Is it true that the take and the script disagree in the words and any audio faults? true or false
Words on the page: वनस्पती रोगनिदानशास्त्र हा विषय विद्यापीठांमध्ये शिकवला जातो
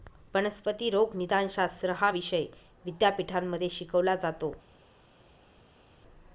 false